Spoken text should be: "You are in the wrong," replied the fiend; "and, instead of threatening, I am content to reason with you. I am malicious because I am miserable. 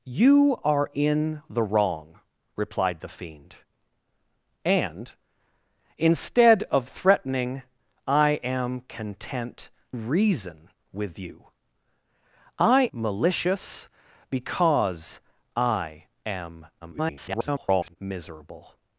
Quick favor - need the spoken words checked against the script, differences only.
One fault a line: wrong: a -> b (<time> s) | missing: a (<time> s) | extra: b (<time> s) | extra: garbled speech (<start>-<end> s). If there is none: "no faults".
missing: to (9.7 s)
missing: am (12.9 s)
extra: garbled speech (16.8-18.0 s)